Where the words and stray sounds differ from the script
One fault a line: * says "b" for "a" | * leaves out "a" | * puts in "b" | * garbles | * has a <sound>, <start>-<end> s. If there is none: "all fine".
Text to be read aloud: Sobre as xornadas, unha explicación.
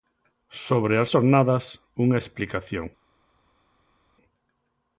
all fine